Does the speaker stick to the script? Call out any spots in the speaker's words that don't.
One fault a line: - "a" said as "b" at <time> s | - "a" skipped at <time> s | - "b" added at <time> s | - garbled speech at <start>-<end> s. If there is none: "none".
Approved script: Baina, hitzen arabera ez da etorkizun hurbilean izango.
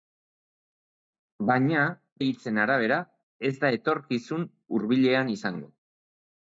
none